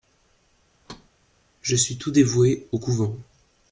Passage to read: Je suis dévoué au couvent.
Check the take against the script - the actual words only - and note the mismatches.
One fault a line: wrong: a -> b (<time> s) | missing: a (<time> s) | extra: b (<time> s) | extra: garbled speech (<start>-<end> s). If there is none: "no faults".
extra: tout (2.0 s)